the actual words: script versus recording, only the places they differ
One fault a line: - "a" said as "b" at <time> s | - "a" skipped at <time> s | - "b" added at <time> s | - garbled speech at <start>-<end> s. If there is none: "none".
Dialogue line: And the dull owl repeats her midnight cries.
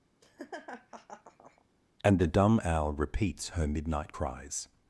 - "dull" said as "dumb" at 2.3 s